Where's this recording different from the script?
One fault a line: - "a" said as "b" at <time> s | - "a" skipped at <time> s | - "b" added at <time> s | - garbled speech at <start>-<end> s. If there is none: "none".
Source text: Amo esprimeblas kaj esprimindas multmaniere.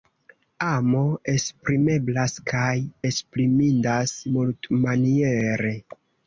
none